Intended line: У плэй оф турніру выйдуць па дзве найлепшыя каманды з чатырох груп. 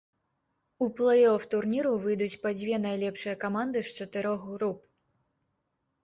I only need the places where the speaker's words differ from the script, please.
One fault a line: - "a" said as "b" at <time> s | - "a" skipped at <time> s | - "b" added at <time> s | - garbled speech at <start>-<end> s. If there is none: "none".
none